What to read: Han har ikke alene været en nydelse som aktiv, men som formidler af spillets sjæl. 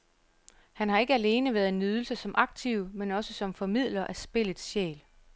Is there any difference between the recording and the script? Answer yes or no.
yes